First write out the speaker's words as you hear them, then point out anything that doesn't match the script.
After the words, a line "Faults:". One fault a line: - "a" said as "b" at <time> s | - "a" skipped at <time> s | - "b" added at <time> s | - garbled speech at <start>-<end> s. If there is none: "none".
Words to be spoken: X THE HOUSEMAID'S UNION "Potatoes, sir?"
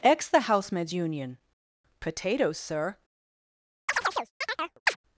X THE HOUSEMAID'S UNION "Potatoes, sir?"
Faults:
none